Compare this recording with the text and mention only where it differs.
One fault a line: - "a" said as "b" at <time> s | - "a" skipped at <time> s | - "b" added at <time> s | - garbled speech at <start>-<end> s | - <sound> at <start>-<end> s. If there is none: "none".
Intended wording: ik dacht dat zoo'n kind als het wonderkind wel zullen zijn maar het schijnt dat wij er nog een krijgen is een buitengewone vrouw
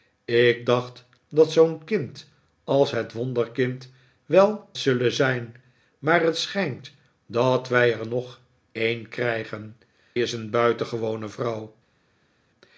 none